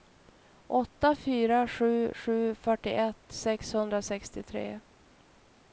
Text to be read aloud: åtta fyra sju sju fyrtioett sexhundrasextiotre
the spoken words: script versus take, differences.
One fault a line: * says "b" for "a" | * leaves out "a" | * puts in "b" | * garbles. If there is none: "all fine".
all fine